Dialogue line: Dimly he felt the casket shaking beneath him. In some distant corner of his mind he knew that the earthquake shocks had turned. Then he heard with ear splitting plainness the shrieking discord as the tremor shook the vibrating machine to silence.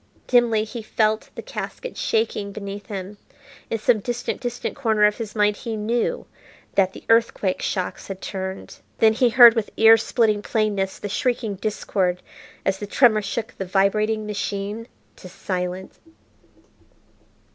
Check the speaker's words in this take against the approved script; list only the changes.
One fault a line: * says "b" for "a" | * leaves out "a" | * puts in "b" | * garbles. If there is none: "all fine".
* puts in "distant"